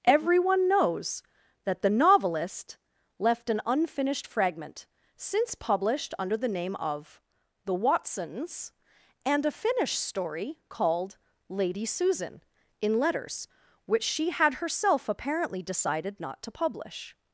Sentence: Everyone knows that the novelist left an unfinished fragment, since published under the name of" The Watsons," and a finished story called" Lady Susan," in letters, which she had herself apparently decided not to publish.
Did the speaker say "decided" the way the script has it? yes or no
yes